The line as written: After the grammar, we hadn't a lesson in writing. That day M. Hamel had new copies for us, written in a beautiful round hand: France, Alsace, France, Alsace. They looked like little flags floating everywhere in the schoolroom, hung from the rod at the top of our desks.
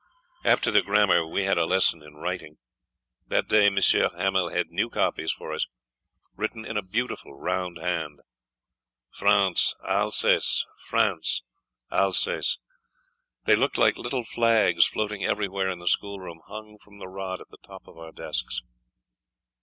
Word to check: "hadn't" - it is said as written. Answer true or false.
false